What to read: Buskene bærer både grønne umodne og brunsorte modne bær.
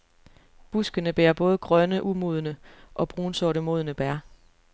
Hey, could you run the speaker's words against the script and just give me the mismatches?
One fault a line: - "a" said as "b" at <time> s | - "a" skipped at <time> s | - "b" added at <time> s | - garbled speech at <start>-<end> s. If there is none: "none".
none